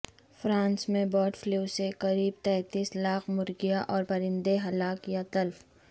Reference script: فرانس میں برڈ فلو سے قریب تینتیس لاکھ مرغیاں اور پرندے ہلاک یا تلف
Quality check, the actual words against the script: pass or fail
pass